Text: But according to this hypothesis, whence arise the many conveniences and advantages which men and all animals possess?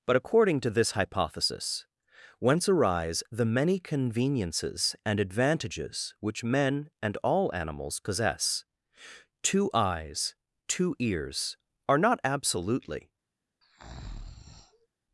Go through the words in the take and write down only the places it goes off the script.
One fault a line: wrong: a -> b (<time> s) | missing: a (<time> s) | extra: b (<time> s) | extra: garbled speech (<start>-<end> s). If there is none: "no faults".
extra: Two eyes two ears are not absolutely (9.4 s)